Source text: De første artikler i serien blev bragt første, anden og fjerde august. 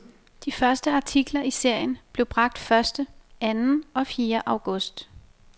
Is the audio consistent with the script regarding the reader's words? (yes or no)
yes